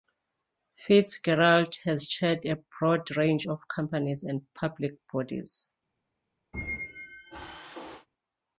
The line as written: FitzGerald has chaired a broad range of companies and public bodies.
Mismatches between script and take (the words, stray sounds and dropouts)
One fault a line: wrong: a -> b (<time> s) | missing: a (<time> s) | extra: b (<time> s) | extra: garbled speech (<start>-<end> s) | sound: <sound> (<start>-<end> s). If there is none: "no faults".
sound: squeak (6.5-8.1 s)